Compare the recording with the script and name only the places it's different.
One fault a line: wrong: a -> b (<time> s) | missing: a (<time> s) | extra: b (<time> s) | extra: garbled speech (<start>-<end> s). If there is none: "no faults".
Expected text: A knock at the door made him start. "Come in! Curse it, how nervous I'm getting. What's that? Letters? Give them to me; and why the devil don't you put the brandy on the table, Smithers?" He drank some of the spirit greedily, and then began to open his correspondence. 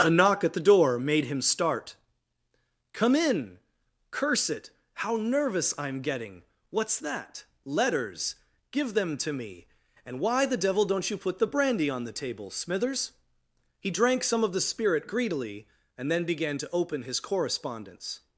no faults